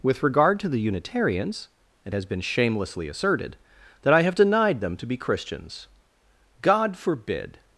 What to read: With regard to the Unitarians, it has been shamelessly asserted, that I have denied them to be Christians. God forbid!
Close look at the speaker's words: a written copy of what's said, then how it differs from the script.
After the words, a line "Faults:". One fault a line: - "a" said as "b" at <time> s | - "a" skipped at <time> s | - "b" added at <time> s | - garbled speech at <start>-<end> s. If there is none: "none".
With regard to the Unitarians, it has been shamelessly asserted, that I have denied them to be Christians. God forbid!
Faults:
none